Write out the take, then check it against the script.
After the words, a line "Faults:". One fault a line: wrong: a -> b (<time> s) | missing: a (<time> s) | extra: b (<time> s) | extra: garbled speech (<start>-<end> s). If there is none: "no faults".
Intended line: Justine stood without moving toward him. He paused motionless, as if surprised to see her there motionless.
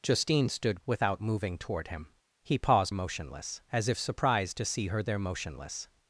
Justine stood without moving toward him. He paused motionless, as if surprised to see her there motionless.
Faults:
no faults